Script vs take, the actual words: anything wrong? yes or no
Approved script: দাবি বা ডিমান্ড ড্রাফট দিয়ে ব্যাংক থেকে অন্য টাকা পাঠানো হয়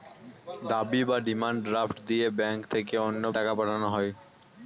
no